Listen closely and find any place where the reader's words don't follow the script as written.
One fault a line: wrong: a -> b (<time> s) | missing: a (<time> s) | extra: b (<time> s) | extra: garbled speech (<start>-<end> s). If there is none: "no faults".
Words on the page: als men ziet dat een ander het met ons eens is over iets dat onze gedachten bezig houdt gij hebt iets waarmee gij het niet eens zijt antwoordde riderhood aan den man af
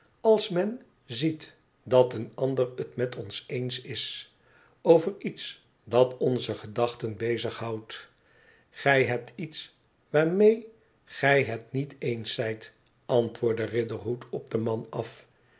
wrong: aan -> op (14.3 s)